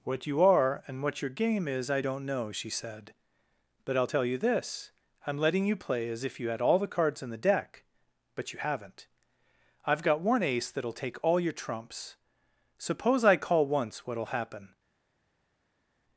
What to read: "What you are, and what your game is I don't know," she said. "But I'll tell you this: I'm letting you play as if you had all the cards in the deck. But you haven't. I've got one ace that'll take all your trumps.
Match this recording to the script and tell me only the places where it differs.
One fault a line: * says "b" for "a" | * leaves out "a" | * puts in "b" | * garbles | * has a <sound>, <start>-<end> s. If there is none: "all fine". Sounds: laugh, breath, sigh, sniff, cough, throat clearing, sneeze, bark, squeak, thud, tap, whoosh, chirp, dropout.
* puts in "Suppose I call once what'll happen"